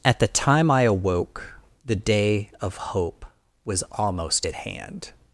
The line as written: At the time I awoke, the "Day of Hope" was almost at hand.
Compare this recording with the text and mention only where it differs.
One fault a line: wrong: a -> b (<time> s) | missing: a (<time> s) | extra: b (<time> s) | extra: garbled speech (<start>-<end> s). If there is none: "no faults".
no faults